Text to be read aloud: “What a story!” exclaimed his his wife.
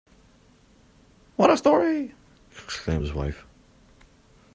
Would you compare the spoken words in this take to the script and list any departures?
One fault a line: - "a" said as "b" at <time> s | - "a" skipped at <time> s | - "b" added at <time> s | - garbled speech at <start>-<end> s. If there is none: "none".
- "his" skipped at 3.1 s